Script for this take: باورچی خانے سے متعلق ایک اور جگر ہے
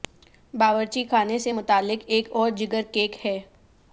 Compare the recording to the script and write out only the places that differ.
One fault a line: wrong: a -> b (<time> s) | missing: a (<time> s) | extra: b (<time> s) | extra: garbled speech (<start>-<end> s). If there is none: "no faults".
extra: کیک (2.9 s)